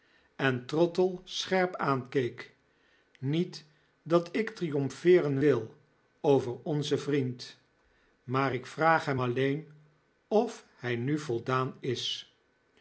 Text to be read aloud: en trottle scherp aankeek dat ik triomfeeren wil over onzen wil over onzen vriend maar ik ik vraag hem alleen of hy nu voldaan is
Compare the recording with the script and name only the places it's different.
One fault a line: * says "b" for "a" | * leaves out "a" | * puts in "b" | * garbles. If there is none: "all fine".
* puts in "niet"
* leaves out "wil over onzen"
* leaves out "ik"